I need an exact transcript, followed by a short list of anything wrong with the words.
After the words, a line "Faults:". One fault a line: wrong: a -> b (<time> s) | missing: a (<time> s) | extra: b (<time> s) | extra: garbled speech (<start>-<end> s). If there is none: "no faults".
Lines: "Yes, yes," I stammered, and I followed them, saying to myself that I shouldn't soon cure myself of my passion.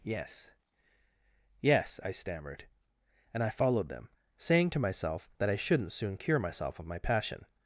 "Yes, yes," I stammered, and I followed them, saying to myself that I shouldn't soon cure myself of my passion.
Faults:
no faults